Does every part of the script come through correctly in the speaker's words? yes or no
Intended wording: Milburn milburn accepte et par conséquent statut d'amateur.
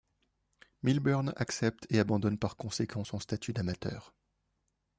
no